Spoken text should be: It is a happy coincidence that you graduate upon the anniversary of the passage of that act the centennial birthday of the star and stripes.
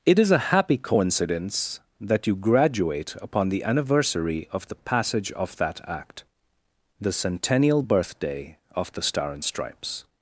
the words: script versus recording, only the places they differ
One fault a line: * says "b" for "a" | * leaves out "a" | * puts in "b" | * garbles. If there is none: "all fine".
all fine